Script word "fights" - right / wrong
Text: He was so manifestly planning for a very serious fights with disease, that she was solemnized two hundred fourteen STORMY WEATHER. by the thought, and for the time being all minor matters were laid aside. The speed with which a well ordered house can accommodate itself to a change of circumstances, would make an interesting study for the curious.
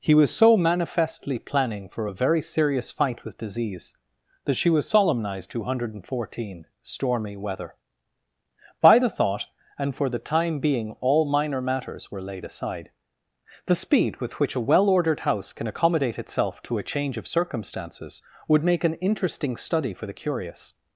wrong